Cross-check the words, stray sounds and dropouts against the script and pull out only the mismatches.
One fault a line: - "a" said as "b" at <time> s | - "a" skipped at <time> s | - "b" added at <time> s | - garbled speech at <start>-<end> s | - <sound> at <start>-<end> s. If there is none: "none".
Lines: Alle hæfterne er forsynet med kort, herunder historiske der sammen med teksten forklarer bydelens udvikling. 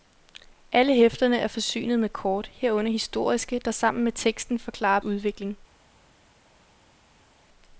- "bydelens" skipped at 5.0 s